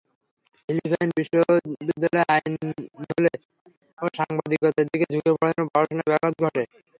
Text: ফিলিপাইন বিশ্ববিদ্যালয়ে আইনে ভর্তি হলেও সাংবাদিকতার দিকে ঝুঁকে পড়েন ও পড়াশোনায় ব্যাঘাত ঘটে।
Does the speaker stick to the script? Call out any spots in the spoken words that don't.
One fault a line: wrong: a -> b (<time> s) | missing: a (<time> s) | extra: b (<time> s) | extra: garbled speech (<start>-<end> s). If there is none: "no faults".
missing: ভর্তি (2.7 s)